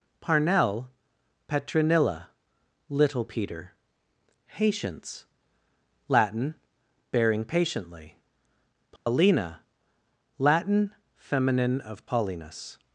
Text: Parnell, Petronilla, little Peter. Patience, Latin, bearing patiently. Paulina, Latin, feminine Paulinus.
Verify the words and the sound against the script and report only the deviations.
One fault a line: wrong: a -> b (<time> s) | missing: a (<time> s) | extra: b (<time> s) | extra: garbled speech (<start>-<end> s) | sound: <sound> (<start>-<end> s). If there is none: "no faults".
sound: dropout (9.0-9.1 s)
extra: of (11.8 s)